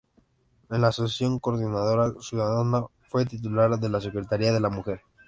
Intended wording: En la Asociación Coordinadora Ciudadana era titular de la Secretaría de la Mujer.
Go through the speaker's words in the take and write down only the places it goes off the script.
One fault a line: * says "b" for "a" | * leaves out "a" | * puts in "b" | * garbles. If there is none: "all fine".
* says "fue" for "era"